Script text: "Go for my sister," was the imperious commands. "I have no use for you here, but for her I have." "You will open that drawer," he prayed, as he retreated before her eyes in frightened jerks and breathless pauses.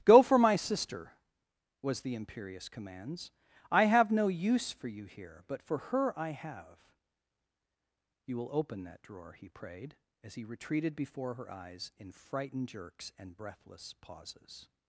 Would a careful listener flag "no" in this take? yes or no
no